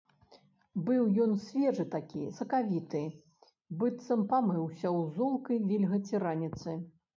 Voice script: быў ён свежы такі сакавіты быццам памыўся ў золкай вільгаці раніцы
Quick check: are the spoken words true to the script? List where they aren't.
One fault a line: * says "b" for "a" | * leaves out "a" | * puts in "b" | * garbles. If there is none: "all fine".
all fine